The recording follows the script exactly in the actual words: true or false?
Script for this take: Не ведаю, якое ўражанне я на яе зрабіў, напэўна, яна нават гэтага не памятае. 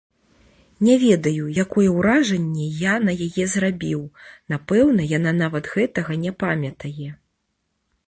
true